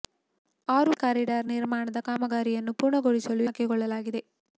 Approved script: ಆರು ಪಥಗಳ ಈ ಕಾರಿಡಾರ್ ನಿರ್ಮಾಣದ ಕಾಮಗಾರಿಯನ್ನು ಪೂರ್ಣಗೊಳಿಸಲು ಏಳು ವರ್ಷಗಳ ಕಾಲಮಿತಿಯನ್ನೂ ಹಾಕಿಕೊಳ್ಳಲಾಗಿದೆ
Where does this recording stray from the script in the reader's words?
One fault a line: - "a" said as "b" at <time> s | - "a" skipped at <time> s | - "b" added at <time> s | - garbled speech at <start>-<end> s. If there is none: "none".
- "ಪಥಗಳ ಈ" skipped at 0.9 s
- "ಏಳು ವರ್ಷಗಳ ಕಾಲಮಿತಿಯನ್ನೂ" skipped at 3.5 s